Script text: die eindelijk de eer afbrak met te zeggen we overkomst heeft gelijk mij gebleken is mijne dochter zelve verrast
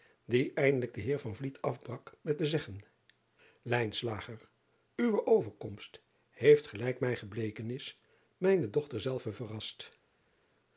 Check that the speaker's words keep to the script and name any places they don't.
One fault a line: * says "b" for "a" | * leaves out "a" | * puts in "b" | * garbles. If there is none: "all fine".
all fine